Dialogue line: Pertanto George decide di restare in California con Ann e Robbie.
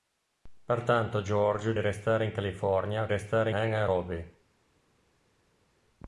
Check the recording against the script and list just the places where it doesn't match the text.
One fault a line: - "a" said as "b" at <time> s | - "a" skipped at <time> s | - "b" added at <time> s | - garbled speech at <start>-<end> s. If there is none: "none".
- "decide" skipped at 1.8 s
- "con" said as "restare" at 3.1 s